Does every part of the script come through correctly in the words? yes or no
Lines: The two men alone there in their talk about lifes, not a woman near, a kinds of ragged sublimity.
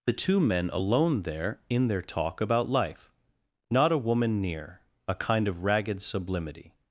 no